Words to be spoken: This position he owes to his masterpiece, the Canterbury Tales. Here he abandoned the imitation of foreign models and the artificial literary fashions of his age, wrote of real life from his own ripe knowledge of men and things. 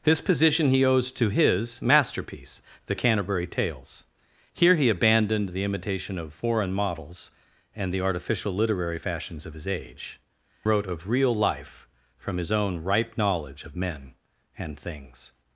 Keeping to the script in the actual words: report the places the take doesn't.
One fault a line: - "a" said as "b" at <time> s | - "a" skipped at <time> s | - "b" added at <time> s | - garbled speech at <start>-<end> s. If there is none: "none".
none